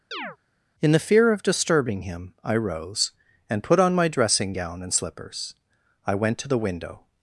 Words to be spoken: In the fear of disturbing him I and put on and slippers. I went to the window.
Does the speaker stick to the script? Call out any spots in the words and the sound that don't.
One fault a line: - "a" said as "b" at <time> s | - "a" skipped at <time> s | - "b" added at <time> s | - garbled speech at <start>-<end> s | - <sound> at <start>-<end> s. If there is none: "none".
- chirp at 0.1-0.4 s
- "rose" added at 2.6 s
- "my dressing gown" added at 4.0 s